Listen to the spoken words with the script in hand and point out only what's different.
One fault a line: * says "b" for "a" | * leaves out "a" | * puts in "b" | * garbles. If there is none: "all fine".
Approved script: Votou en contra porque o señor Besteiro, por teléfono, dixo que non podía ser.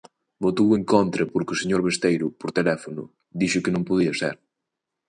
all fine